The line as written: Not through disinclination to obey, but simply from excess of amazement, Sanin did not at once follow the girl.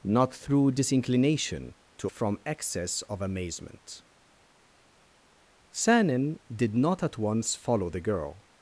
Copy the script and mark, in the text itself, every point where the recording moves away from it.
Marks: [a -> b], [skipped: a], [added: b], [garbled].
Not through disinclination to [skipped: obey, but simply] from excess of amazement, Sanin did not at once follow the girl.